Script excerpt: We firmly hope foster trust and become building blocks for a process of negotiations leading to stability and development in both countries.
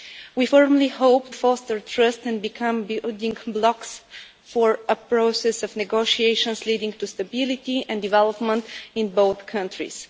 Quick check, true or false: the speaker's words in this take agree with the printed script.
true